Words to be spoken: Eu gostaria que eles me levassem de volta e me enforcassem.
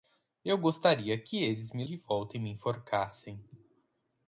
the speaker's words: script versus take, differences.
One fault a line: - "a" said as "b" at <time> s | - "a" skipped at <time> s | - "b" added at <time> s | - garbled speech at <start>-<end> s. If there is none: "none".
- "levassem" skipped at 1.9 s